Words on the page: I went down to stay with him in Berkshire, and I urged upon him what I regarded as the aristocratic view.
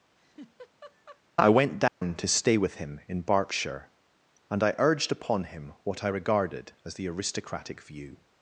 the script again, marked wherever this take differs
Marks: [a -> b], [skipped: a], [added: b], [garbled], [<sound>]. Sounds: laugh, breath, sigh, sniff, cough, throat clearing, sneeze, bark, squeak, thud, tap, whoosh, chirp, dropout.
[laugh] I went down [dropout] to stay with him in Berkshire, and I urged upon him what I regarded as the aristocratic view.